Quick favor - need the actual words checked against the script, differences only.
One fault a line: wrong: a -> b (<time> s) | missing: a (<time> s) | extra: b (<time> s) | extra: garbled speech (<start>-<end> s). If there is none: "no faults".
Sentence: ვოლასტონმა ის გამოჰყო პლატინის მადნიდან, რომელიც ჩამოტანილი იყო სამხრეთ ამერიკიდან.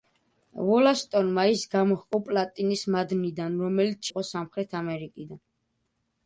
missing: ჩამოტანილი (4.0 s)